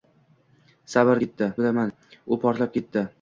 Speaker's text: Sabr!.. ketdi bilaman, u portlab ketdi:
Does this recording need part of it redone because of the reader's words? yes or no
no